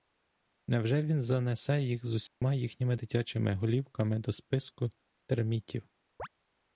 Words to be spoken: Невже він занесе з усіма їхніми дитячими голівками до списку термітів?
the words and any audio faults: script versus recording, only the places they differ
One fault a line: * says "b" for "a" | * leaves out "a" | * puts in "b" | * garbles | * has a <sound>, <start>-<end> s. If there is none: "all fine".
* puts in "їх"
* has a dropout, 2.3-2.4 s
* has a chirp, 6.2-6.3 s